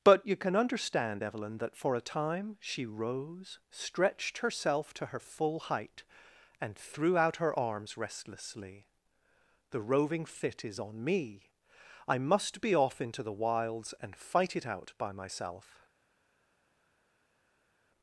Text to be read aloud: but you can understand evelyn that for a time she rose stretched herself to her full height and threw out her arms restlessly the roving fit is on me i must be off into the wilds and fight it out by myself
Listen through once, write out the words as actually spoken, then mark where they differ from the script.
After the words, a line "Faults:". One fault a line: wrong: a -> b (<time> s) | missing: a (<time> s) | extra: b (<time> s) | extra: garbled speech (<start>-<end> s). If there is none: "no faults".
but you can understand evelyn that for a time she rose stretched herself to her full height and threw out her arms restlessly the roving fit is on me i must be off into the wilds and fight it out by myself
Faults:
no faults